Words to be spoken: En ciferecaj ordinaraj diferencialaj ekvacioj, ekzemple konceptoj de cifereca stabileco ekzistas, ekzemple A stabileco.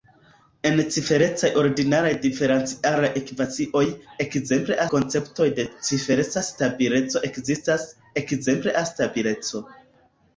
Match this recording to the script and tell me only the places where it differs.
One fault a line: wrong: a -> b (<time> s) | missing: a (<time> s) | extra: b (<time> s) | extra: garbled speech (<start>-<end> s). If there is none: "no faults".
no faults